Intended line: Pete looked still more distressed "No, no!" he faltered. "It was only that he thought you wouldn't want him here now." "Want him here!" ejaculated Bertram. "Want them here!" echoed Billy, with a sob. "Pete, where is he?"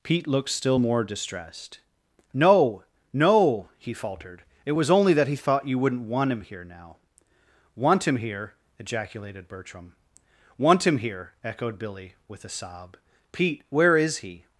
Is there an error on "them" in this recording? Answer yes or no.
yes